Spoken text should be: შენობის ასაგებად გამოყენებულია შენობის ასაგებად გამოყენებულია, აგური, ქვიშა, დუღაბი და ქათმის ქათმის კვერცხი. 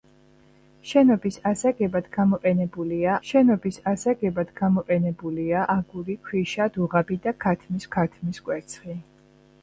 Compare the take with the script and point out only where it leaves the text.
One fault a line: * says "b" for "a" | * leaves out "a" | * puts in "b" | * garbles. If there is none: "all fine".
all fine